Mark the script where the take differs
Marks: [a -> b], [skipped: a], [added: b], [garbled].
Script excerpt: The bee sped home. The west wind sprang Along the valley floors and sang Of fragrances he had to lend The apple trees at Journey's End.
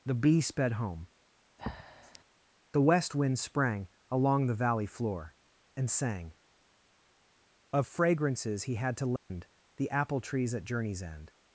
The bee sped home. The west wind sprang Along the valley [floors -> floor] and sang Of fragrances he had to lend The apple trees at Journey's End.